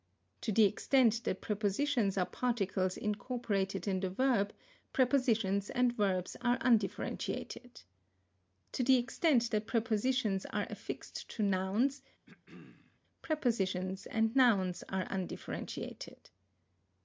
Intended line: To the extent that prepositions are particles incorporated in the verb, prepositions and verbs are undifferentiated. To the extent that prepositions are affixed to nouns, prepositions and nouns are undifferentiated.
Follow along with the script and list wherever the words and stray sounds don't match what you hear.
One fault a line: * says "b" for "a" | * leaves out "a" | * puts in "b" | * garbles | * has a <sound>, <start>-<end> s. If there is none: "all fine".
* has a throat clearing, 12.3-13.0 s